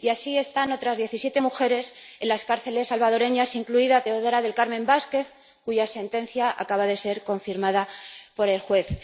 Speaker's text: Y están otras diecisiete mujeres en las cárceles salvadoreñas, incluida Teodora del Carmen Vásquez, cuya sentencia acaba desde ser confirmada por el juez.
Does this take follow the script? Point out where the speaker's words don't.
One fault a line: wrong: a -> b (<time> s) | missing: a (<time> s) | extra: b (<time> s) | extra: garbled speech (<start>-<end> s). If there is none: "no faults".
extra: así (0.1 s)
wrong: desde -> de (6.8 s)